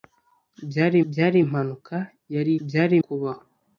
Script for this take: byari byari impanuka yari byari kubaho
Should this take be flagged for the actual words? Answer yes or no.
no